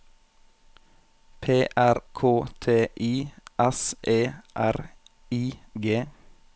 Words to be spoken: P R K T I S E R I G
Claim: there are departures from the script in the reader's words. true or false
false